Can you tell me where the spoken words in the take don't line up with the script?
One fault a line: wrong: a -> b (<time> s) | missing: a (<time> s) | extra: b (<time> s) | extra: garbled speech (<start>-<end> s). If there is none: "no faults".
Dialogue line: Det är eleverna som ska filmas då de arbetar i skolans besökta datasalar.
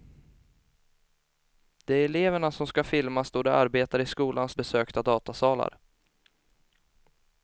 no faults